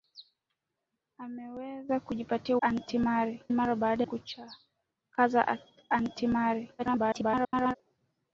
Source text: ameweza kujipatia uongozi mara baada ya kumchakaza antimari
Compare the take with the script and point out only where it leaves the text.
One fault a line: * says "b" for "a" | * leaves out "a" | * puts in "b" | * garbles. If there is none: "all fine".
* says "antimari" for "uongozi"
* leaves out "ya"
* garbles